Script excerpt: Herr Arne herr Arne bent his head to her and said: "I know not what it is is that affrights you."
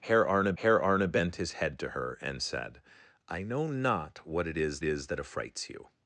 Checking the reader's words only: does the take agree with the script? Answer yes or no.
yes